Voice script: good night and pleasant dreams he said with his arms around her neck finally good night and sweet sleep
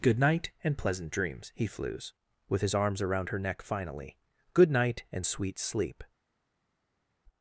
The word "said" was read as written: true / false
false